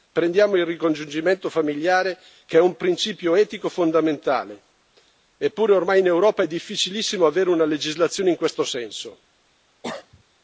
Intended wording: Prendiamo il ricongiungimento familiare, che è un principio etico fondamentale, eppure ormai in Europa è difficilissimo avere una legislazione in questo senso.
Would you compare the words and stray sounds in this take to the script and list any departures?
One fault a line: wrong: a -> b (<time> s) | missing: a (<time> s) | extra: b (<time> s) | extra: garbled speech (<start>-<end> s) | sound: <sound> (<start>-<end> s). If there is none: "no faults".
sound: cough (9.8-10.2 s)